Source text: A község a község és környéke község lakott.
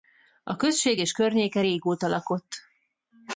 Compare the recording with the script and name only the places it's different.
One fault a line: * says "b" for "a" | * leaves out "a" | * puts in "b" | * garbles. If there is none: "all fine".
* leaves out "a község"
* says "régóta" for "község"